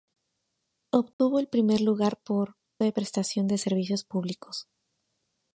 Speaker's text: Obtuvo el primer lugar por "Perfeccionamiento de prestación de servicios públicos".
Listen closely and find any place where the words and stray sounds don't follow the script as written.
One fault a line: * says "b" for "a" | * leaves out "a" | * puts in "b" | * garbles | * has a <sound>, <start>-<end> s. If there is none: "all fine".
* has a dropout, 1.1-1.2 s
* leaves out "Perfeccionamiento"